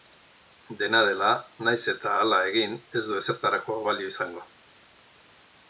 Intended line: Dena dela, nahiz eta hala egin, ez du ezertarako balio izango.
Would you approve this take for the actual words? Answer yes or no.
yes